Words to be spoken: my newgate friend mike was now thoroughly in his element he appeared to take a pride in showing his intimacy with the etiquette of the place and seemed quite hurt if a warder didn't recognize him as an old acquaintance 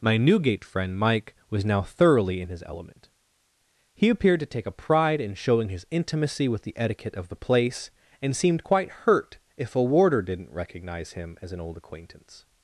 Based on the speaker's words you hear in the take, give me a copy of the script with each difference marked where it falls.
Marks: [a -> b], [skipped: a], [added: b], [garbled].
my newgate friend mike was now thoroughly in his element he appeared to take a pride in showing his intimacy with the etiquette of the place and seemed quite hurt if a warder didn't recognize him as an old acquaintance